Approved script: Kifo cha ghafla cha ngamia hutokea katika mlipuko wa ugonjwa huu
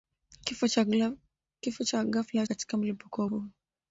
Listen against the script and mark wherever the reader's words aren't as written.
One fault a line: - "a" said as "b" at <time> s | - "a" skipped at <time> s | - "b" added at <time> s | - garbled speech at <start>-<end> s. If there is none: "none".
- "cha ngamia hutokea" skipped at 2.5 s
- "ugonjwa" skipped at 3.3 s